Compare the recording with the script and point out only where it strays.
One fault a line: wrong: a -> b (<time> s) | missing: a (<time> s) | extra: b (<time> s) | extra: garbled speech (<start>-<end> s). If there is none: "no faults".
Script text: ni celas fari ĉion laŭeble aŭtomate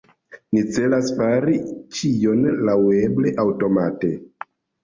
no faults